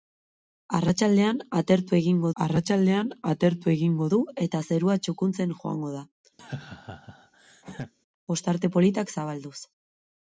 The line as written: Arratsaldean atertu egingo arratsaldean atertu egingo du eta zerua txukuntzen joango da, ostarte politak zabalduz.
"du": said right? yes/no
yes